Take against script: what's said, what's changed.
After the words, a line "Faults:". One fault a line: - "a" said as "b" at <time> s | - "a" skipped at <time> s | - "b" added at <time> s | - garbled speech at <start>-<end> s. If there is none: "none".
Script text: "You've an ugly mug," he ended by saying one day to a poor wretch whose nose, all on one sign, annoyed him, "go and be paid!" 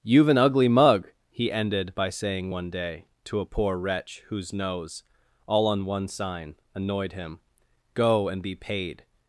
"You've an ugly mug," he ended by saying one day to a poor wretch whose nose, all on one sign, annoyed him, "go and be paid!"
Faults:
none